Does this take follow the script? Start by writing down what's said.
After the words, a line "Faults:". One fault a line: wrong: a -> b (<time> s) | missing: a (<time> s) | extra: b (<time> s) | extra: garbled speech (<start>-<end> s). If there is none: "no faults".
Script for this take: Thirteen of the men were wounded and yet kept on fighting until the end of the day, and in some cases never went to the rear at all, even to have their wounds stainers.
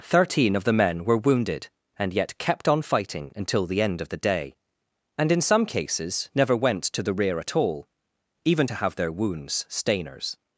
Thirteen of the men were wounded and yet kept on fighting until the end of the day, and in some cases never went to the rear at all, even to have their wounds stainers.
Faults:
no faults